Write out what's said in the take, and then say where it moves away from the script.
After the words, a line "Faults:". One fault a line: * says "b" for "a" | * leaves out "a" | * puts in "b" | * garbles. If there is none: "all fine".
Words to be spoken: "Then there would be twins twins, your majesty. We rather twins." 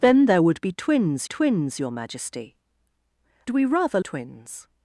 "Then there would be twins twins, your majesty. We rather twins."
Faults:
all fine